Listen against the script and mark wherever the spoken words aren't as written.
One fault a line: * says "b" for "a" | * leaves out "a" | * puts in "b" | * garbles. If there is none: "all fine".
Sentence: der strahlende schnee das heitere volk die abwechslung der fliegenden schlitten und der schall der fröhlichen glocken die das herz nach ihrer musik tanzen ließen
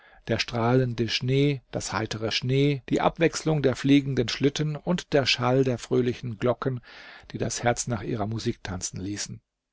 * says "schnee" for "volk"